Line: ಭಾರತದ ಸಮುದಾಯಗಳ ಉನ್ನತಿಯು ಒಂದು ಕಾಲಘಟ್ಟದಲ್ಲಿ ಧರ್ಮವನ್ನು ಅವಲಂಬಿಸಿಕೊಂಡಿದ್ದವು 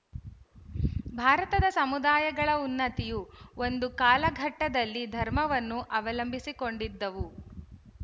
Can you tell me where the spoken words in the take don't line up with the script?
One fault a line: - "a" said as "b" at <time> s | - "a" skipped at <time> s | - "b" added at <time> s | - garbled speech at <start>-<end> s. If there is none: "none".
none